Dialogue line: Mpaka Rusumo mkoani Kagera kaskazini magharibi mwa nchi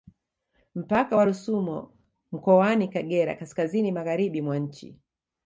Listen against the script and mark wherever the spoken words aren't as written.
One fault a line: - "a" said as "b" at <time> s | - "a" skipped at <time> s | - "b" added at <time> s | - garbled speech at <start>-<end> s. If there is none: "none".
- "wa" added at 1.1 s